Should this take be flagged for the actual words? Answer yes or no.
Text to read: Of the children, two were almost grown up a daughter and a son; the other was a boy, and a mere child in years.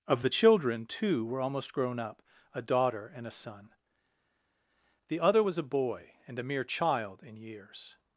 no